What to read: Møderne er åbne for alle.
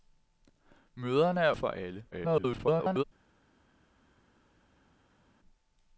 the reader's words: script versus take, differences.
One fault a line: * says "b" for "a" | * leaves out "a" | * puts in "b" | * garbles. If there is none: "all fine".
* leaves out "åbne"
* garbles